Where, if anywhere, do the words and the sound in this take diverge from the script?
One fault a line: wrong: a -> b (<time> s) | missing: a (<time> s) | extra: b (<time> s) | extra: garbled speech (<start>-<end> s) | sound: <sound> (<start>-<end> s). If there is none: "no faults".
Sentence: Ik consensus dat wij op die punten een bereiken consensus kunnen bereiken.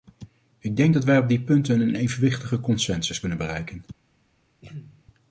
wrong: consensus -> denk (0.8 s)
wrong: bereiken -> evenwichtige (2.0 s)
sound: throat clearing (4.6-5.0 s)